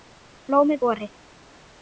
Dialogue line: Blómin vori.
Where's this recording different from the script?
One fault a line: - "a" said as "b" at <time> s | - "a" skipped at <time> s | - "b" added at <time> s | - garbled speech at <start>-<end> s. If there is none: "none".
none